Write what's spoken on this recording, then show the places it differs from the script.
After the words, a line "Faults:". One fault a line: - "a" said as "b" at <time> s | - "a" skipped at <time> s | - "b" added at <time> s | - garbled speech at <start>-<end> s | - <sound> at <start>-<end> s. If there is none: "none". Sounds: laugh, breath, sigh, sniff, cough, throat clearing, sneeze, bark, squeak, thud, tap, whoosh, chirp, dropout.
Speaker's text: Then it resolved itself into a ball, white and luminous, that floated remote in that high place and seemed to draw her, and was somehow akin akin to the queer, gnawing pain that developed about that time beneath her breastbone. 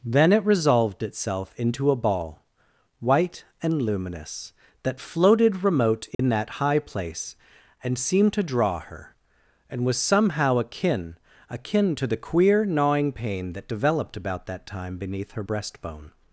Then it resolved itself into a ball, white and luminous, that floated remote in that high place and seemed to draw her, and was somehow akin akin to the queer, gnawing pain that developed about that time beneath her breastbone.
Faults:
- dropout at 6.1-6.2 s